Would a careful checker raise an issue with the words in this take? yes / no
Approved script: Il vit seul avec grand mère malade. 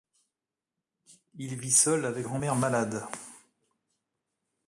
no